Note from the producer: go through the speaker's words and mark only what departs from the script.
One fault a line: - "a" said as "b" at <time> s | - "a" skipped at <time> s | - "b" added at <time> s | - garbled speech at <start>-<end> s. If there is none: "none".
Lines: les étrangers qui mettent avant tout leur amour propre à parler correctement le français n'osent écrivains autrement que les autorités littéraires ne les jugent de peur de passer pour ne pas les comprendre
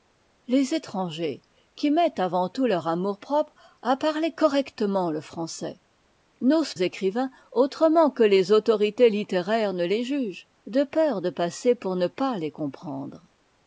none